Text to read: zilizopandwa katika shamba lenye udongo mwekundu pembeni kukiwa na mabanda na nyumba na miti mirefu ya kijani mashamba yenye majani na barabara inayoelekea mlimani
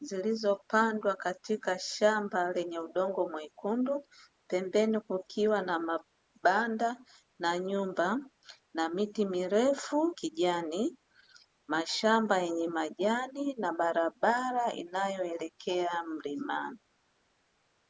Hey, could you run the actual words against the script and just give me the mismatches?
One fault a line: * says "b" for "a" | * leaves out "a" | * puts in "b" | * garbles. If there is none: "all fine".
* leaves out "ya"